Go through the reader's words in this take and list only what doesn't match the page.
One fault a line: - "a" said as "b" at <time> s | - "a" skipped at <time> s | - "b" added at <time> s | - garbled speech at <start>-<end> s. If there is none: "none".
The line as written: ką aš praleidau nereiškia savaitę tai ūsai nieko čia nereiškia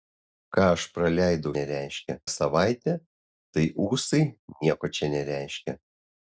none